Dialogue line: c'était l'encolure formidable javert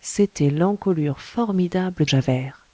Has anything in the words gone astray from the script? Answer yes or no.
no